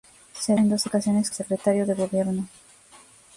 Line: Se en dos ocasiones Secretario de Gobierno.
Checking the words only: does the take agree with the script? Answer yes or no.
yes